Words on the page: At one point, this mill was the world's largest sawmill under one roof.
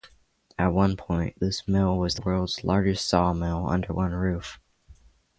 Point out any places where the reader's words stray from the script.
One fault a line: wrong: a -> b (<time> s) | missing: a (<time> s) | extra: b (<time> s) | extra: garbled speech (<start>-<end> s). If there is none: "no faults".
missing: the (2.1 s)